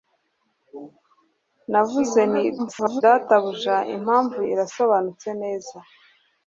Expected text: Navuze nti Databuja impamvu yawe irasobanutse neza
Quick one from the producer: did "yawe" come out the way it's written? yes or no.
no